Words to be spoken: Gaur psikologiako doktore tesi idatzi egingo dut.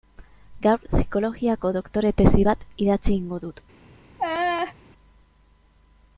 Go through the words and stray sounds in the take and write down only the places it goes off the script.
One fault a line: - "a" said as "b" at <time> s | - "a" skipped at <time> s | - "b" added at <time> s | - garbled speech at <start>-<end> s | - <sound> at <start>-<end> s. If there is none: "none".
- "bat" added at 2.5 s
- laugh at 4.2-4.7 s